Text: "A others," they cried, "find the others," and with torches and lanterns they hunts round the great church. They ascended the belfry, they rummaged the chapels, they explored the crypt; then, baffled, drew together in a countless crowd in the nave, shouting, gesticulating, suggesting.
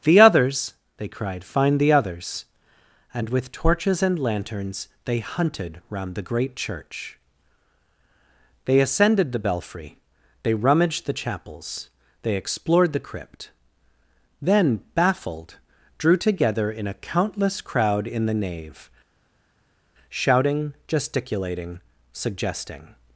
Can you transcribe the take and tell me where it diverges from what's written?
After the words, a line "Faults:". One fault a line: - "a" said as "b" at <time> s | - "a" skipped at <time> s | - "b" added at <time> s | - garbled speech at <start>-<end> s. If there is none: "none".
"The others," they cried, "find the others," and with torches and lanterns they hunted round the great church. They ascended the belfry, they rummaged the chapels, they explored the crypt; then, baffled, drew together in a countless crowd in the nave, shouting, gesticulating, suggesting.
Faults:
- "A" said as "The" at 0.0 s
- "hunts" said as "hunted" at 5.2 s